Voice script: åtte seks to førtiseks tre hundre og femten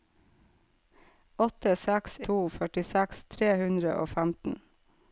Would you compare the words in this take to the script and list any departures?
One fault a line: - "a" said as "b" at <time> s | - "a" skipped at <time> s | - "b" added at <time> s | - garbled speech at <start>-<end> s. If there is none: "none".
none